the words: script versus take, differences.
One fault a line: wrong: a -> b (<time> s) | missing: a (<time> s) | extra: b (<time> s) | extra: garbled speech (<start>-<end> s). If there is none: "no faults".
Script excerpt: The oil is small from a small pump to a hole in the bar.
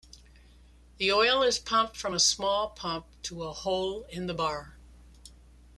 wrong: small -> pumped (1.6 s)